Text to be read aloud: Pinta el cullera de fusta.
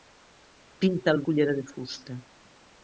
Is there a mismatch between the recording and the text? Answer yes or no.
no